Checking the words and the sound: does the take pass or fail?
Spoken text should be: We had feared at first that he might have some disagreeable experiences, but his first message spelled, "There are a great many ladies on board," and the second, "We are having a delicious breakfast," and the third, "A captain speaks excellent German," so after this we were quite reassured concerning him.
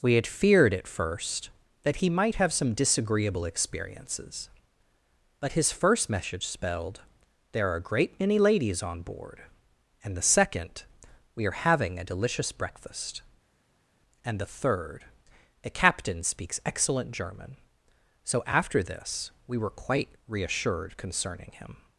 pass